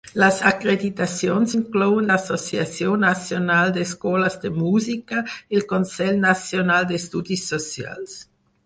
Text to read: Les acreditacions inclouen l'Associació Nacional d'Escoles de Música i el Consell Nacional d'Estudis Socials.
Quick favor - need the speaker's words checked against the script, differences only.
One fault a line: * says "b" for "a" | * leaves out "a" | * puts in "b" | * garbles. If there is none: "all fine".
all fine